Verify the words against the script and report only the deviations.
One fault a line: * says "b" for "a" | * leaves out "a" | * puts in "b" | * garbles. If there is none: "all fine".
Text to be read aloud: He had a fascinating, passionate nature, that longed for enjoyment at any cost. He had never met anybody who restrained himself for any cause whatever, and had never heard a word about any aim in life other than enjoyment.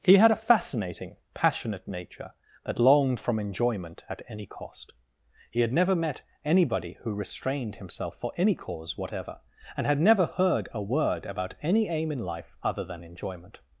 * says "from" for "for"